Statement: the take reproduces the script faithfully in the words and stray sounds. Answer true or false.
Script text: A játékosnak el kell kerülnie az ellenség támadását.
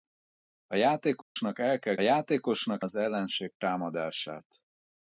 false